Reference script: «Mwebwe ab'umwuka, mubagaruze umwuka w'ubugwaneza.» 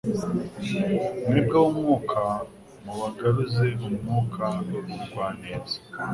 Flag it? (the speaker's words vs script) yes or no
no